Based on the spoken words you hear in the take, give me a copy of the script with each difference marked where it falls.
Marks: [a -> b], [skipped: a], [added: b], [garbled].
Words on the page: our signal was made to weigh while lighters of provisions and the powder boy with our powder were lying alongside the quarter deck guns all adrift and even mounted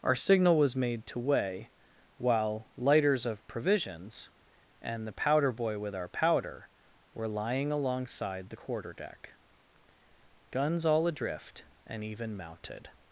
our signal was made to weigh while lighters of provisions and the powder boy with our powder were lying alongside the quarter deck guns all adrift and even mounted